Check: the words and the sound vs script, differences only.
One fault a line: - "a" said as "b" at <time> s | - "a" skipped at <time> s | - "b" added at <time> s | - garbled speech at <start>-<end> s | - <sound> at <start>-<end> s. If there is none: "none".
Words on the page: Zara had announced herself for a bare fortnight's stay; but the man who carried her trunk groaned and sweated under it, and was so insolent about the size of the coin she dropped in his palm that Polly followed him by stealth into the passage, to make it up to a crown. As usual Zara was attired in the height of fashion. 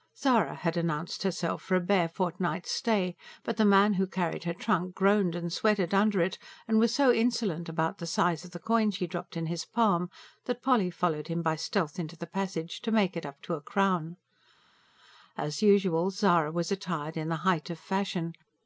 none